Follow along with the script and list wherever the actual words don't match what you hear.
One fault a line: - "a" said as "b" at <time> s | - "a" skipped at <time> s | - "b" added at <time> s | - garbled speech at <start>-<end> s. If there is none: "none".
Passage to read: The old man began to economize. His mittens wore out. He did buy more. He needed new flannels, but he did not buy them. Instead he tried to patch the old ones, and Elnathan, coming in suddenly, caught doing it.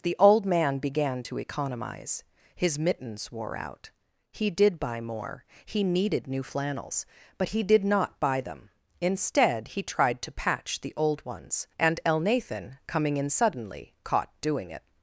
none